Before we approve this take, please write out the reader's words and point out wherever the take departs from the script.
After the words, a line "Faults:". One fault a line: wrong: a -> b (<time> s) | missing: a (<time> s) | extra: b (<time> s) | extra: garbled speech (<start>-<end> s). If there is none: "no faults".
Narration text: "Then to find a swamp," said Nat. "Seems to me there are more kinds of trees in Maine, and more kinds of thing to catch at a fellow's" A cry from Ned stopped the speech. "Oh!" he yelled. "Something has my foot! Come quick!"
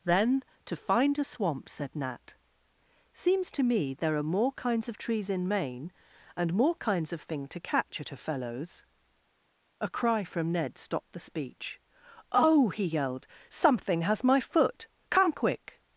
"Then to find a swamp," said Nat. "Seems to me there are more kinds of trees in Maine, and more kinds of thing to catch at a fellow's" A cry from Ned stopped the speech. "Oh!" he yelled. "Something has my foot! Come quick!"
Faults:
no faults